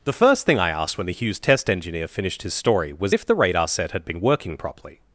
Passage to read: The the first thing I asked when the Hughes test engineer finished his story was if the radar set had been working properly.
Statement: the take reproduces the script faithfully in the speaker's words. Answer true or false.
false